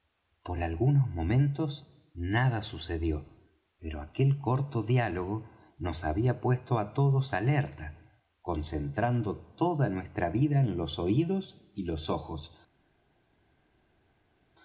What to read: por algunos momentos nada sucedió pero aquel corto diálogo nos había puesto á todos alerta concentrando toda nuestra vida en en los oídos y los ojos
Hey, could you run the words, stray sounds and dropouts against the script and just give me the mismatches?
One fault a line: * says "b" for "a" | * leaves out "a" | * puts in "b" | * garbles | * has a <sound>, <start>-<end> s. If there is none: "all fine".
* leaves out "en"